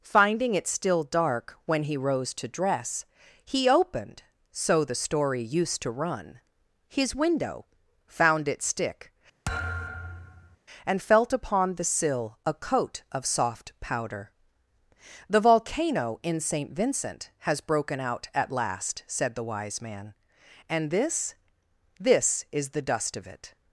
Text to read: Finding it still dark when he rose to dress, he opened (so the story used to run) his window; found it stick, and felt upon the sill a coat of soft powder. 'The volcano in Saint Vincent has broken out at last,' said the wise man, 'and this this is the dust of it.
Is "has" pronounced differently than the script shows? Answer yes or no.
no